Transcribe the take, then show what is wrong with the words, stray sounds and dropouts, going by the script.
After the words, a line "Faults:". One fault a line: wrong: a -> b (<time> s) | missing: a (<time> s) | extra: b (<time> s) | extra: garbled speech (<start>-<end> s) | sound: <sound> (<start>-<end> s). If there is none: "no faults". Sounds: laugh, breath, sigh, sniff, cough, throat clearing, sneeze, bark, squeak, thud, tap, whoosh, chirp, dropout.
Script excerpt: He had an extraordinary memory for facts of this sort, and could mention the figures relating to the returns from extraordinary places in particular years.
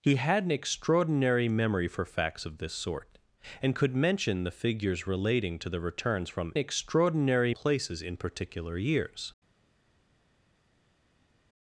He had an extraordinary memory for facts of this sort, and could mention the figures relating to the returns from extraordinary places in particular years.
Faults:
no faults